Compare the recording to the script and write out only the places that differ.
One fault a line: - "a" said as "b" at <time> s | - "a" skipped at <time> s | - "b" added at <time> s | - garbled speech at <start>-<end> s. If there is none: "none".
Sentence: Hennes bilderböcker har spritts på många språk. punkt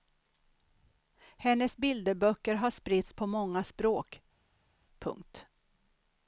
none